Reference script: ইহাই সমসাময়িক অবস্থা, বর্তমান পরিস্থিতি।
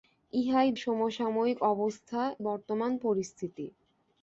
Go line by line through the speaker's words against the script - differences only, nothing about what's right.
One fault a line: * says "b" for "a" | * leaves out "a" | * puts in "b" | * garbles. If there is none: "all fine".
all fine